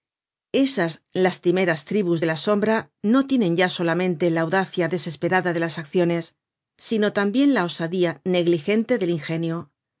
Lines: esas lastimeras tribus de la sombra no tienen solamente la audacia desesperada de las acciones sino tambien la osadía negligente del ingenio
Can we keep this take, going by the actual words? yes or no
no